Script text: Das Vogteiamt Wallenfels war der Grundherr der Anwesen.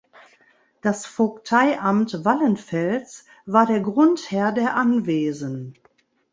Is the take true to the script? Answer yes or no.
yes